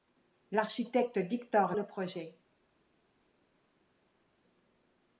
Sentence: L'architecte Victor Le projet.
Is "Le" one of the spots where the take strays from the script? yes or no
no